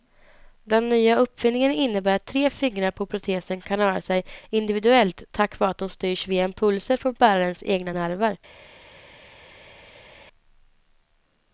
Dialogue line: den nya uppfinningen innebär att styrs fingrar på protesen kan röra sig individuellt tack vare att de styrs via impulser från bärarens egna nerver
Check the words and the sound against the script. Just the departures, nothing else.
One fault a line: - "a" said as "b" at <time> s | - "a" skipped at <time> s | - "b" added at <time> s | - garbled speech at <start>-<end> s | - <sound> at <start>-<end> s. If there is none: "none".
- "styrs" said as "tre" at 2.2 s